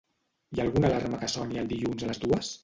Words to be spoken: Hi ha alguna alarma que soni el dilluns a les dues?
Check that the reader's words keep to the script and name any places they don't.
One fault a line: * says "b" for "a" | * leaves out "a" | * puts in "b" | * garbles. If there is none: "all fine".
all fine